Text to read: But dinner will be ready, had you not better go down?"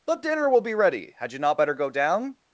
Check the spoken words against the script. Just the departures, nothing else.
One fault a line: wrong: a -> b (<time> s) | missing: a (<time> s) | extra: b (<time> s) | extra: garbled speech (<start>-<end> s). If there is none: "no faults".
no faults